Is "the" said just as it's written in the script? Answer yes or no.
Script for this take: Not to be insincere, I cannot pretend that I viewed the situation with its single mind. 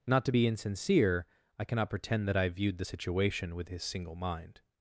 yes